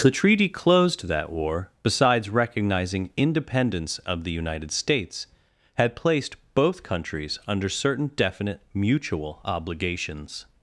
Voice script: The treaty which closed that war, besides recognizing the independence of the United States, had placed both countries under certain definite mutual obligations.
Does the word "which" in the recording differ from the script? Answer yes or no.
yes